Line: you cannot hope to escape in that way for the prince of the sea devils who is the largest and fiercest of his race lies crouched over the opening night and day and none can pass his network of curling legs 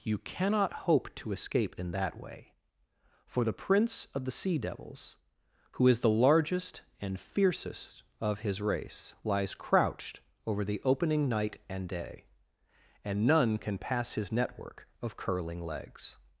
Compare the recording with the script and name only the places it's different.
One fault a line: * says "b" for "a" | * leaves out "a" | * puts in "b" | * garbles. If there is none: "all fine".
all fine